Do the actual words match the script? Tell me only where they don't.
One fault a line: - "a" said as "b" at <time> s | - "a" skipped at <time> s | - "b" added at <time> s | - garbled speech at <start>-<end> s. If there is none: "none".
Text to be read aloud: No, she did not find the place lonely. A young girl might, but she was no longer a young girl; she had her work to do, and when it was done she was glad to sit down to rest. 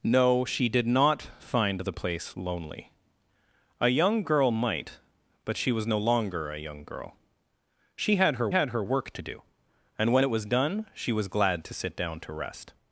- "had her" added at 8.5 s